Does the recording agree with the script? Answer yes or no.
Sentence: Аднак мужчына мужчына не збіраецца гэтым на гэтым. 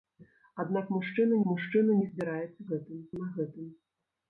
yes